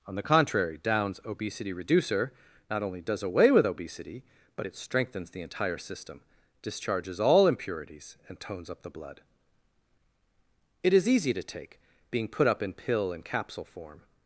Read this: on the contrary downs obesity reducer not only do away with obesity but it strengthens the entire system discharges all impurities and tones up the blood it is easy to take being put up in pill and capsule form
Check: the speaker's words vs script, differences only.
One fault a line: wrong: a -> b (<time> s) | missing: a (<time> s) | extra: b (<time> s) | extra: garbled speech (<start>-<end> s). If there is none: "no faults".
wrong: do -> does (3.0 s)